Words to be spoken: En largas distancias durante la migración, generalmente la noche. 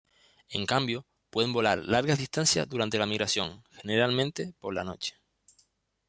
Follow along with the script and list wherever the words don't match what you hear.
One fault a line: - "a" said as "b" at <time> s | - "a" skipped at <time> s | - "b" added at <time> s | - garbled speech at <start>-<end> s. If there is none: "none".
- "cambio pueden volar" added at 0.6 s
- "por" added at 4.6 s